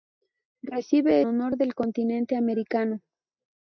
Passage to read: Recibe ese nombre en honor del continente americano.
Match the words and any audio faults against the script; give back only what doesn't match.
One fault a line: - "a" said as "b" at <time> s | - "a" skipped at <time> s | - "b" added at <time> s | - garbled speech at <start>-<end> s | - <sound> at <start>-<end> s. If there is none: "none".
- "ese nombre en" skipped at 1.2 s